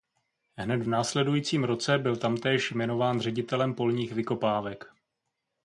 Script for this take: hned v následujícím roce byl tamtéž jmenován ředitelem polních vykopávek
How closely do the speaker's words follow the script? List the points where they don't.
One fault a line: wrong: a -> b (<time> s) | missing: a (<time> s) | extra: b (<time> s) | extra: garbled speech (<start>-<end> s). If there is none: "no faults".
no faults